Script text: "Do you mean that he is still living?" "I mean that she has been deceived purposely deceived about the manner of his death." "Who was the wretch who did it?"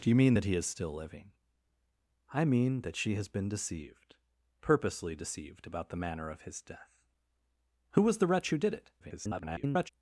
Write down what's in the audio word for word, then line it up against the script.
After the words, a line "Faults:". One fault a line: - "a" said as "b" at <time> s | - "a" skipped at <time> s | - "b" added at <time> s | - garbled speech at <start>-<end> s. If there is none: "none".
"Do you mean that he is still living?" "I mean that she has been deceived purposely deceived about the manner of his death." "Who was the wretch who did it?" [garbled]
Faults:
- garbled speech at 9.0-9.9 s